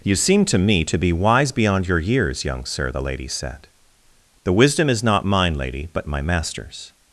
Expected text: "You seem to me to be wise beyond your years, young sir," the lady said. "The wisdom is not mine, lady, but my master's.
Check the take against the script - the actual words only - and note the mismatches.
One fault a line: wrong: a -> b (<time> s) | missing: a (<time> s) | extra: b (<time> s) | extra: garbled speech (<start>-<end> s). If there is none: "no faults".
no faults